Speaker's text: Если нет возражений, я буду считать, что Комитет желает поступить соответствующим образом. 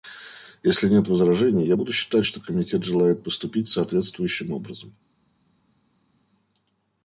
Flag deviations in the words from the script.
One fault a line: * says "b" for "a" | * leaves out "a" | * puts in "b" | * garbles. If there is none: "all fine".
all fine